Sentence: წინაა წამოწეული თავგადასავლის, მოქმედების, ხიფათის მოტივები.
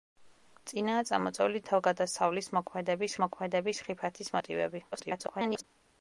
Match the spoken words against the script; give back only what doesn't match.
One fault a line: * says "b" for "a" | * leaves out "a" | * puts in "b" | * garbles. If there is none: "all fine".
* puts in "მოქმედების"
* garbles